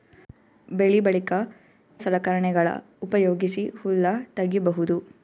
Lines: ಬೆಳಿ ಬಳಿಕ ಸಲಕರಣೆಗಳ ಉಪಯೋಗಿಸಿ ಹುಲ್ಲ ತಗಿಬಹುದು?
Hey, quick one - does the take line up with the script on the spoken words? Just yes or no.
yes